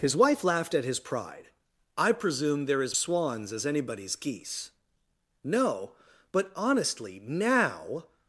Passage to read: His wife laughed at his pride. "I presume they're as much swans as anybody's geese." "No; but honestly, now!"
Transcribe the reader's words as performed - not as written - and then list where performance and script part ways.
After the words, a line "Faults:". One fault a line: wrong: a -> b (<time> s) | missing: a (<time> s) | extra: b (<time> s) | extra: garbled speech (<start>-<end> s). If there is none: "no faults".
His wife laughed at his pride. "I presume they're as swans as anybody's geese." "No; but honestly, now!"
Faults:
missing: much (3.0 s)